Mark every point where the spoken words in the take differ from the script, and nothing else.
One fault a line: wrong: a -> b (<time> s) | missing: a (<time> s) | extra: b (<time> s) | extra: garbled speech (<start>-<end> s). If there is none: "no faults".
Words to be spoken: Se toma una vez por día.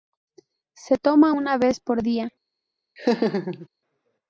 no faults